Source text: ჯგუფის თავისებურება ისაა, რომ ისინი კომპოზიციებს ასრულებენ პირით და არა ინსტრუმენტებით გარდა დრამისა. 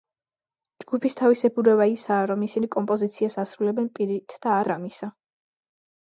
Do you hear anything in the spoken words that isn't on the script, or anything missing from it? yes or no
yes